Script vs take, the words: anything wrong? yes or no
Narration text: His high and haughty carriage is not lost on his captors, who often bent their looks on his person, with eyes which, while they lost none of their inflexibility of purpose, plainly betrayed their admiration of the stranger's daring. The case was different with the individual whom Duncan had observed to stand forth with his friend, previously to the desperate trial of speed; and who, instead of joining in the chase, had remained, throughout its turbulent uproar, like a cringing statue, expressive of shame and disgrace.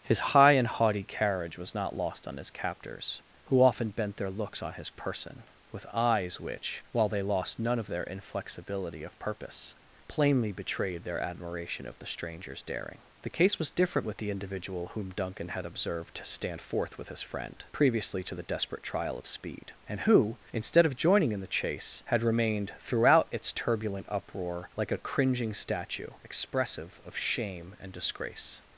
yes